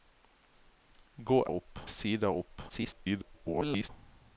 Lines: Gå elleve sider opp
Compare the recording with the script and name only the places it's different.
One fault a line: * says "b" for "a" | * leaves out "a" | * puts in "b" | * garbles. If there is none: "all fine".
* says "opp" for "elleve"
* garbles